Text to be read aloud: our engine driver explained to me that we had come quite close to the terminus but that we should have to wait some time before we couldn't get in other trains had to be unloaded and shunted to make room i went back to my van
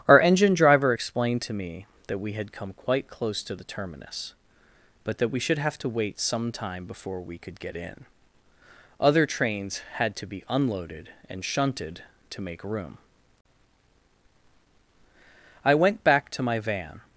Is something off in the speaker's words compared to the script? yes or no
yes